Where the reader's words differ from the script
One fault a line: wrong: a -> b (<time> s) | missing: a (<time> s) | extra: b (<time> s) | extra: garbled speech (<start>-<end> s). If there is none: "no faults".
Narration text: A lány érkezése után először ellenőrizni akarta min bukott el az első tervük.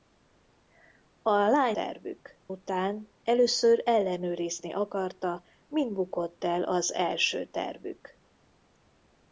wrong: érkezése -> tervük (1.7 s)